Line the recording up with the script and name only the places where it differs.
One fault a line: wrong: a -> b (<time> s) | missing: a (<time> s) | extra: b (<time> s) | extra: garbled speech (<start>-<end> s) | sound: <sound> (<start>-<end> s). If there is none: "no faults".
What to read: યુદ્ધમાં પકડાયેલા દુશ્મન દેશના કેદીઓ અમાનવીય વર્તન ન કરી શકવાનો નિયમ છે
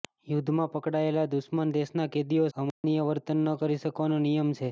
sound: dropout (2.7-2.8 s)